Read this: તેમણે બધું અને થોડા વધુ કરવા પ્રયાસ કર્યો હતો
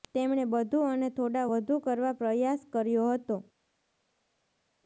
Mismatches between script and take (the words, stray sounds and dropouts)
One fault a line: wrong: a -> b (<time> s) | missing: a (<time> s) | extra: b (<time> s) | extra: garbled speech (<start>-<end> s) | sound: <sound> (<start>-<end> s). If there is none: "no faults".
no faults